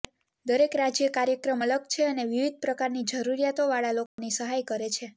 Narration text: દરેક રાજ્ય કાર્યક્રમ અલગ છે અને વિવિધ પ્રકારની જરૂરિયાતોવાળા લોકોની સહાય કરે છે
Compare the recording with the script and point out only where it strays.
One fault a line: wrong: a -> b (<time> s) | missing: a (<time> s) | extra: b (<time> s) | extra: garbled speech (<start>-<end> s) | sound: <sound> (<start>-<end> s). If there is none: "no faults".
sound: dropout (4.1-4.2 s)